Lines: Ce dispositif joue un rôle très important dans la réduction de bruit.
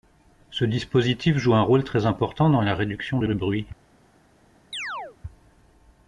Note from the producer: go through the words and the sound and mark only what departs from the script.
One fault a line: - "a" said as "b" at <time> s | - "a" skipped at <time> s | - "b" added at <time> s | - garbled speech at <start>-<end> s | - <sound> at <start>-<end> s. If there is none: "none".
- "de" added at 3.2 s
- chirp at 4.7-5.2 s